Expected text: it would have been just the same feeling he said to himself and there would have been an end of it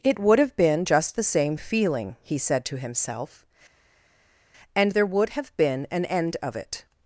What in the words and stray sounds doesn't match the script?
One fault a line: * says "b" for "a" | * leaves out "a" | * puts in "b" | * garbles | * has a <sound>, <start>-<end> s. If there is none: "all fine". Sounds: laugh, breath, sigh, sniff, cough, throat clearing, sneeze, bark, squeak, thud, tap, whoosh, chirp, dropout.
all fine